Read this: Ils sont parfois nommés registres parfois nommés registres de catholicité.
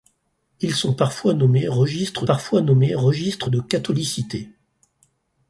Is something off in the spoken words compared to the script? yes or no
no